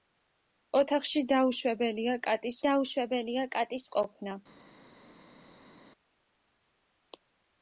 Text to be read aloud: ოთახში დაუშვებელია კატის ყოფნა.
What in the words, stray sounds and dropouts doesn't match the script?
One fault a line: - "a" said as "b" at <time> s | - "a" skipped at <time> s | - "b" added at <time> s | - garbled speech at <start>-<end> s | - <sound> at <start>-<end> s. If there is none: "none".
- "დაუშვებელია კატის" added at 2.7 s